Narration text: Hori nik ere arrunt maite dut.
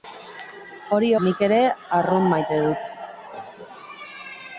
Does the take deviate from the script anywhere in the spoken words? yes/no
no